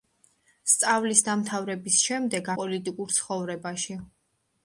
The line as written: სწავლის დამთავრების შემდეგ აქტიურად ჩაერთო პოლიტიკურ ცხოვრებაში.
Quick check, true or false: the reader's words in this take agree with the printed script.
false